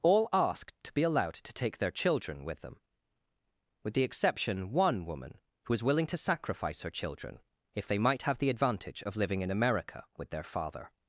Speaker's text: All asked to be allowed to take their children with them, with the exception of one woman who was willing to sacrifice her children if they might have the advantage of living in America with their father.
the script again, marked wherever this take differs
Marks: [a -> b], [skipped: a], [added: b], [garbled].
All asked to be allowed to take their children with them, with the exception [skipped: of] one woman who was willing to sacrifice her children if they might have the advantage of living in America with their father.